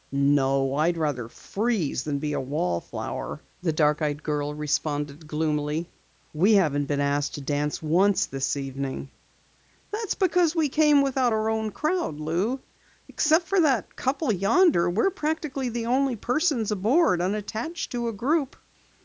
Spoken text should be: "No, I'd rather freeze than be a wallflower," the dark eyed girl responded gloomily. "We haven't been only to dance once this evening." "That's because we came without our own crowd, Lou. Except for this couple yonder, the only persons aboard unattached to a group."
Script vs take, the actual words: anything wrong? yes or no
yes